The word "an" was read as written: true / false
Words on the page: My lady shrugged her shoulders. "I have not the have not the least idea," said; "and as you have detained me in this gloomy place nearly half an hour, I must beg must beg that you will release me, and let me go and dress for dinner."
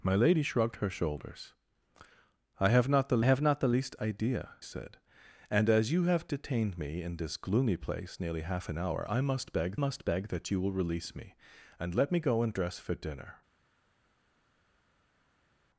true